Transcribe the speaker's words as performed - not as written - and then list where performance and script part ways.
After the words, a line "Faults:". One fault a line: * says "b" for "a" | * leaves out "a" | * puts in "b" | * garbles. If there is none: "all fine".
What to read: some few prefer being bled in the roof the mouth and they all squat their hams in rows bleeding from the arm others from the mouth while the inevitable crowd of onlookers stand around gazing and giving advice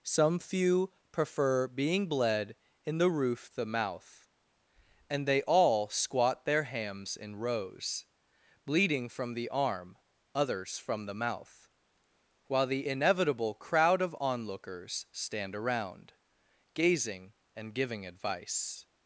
some few prefer being bled in the roof the mouth and they all squat their hams in rows bleeding from the arm others from the mouth while the inevitable crowd of onlookers stand around gazing and giving advice
Faults:
all fine